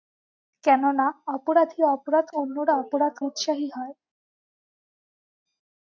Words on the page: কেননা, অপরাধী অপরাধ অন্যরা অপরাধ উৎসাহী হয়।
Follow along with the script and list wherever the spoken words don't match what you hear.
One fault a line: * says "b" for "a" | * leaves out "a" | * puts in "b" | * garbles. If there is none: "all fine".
all fine